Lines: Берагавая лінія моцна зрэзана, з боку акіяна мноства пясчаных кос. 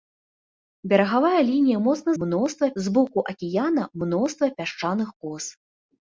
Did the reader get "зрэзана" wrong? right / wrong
wrong